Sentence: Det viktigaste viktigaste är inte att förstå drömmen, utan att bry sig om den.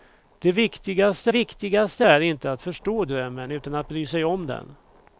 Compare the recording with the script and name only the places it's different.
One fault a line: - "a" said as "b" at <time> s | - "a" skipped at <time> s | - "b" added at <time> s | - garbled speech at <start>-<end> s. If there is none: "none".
none